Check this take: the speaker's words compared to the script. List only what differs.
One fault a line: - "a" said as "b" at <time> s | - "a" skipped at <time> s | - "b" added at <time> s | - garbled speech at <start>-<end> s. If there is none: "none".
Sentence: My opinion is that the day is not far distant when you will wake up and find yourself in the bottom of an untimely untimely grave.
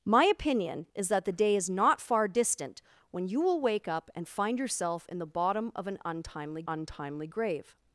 none